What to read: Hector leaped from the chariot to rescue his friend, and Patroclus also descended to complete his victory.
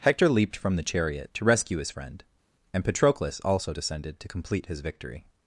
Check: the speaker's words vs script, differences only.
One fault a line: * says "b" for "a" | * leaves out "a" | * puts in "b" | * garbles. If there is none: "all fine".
all fine